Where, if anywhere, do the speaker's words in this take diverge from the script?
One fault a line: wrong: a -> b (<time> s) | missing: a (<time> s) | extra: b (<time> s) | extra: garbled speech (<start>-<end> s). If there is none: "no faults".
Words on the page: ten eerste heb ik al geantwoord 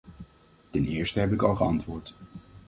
no faults